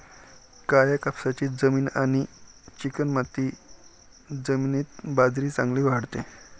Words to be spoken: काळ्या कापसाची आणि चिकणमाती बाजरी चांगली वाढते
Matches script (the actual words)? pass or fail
fail